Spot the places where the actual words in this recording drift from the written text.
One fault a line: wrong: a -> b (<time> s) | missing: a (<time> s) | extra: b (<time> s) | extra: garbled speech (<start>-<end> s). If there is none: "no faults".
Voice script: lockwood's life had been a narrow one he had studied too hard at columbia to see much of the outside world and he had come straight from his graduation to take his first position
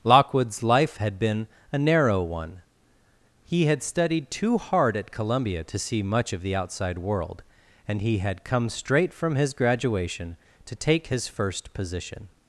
no faults